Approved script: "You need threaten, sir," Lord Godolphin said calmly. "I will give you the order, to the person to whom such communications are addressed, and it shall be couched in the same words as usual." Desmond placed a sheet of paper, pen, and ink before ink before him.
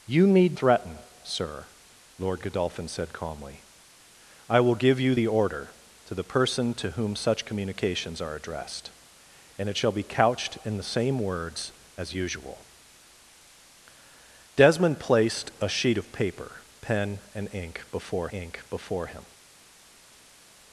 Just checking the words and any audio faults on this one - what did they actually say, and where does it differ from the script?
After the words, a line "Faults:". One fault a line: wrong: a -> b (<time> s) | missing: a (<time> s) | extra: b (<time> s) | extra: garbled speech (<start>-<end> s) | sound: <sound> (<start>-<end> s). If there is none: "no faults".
"You need threaten, sir," Lord Godolphin said calmly. "I will give you the order, to the person to whom such communications are addressed, and it shall be couched in the same words as usual." Desmond placed a sheet of paper, pen, and ink before ink before him.
Faults:
no faults